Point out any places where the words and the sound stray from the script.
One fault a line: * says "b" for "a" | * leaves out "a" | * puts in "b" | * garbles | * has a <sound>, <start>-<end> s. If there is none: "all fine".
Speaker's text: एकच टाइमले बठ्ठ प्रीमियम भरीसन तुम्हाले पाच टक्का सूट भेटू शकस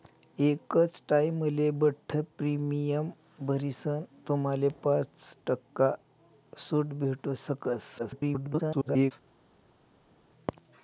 * garbles